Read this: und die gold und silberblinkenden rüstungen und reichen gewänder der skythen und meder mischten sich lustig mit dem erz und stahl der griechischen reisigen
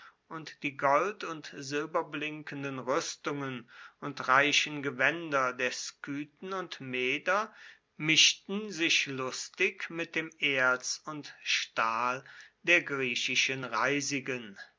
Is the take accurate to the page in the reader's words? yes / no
yes